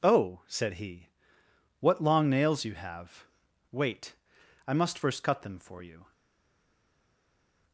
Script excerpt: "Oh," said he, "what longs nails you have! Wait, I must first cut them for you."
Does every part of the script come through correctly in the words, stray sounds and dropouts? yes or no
no